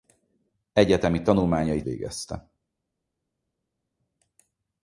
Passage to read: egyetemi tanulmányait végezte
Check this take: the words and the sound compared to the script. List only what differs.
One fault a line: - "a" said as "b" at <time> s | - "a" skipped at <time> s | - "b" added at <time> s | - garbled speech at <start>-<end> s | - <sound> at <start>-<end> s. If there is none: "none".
none